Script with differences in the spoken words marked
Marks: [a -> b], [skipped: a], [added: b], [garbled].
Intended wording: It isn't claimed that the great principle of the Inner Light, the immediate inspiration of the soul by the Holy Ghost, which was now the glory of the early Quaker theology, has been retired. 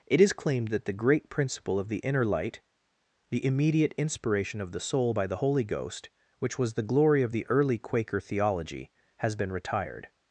It [isn't -> is] claimed that the great principle of the Inner Light, the immediate inspiration of the soul by the Holy Ghost, which was [skipped: now] the glory of the early Quaker theology, has been retired.